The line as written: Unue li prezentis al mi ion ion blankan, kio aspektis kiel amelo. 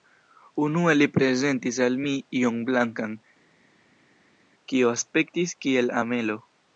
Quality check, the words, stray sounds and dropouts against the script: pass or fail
fail